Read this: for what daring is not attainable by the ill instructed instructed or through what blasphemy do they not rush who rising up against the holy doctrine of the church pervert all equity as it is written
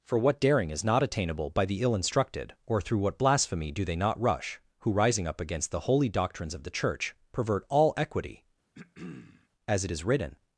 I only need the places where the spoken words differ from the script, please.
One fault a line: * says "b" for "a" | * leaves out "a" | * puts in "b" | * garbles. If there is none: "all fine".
* leaves out "instructed"
* says "doctrines" for "doctrine"